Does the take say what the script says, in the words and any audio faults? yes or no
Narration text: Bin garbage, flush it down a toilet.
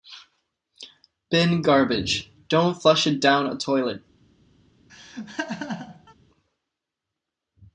no